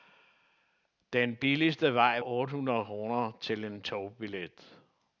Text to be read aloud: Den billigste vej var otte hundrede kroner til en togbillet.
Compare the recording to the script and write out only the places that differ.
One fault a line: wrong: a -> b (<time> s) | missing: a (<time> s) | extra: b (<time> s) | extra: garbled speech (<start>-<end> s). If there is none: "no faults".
missing: var (2.2 s)